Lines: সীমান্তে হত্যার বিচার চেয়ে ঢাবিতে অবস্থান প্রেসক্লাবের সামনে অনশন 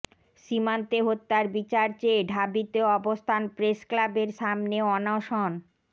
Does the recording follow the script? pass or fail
pass